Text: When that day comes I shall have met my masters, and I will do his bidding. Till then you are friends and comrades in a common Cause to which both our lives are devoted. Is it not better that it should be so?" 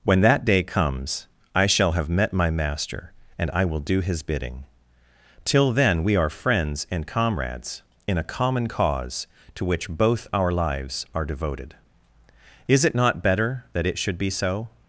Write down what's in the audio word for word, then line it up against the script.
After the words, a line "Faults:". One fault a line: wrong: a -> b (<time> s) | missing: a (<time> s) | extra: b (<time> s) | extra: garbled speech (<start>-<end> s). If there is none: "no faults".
When that day comes I shall have met my master, and I will do his bidding. Till then we are friends and comrades in a common Cause to which both our lives are devoted. Is it not better that it should be so?"
Faults:
wrong: masters -> master (2.5 s)
wrong: you -> we (6.0 s)